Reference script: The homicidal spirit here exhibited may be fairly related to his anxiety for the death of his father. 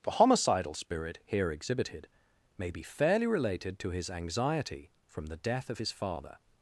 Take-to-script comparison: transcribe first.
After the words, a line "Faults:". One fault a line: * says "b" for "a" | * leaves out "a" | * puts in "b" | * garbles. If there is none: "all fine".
The homicidal spirit here exhibited may be fairly related to his anxiety from the death of his father.
Faults:
* says "from" for "for"